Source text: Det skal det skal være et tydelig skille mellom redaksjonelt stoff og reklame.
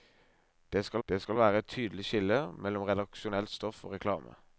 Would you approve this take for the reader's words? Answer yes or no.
yes